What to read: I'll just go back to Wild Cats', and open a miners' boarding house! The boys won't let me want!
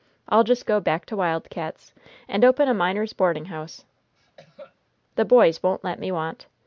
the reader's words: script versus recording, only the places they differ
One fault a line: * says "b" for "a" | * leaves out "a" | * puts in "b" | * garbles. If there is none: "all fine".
all fine